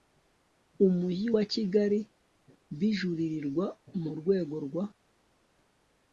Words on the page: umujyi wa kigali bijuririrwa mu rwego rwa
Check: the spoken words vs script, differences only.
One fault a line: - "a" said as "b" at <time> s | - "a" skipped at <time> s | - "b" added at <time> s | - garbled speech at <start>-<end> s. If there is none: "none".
none